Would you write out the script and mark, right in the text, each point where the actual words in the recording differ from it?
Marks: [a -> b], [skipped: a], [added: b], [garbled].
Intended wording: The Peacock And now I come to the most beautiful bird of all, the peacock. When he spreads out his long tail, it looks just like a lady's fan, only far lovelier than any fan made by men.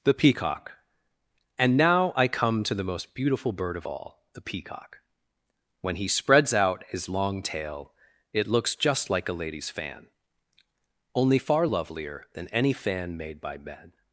The Peacock And now I come to the most beautiful bird of all, the peacock. When he spreads out his long tail, it looks just like a lady's fan, only far lovelier than any fan made by men.